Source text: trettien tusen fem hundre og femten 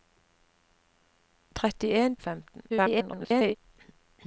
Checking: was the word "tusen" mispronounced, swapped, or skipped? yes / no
yes